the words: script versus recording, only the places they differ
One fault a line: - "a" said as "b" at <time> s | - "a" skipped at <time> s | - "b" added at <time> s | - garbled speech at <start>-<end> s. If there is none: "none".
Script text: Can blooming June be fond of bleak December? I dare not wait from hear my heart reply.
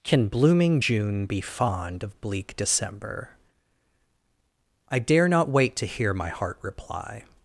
- "from" said as "to" at 5.8 s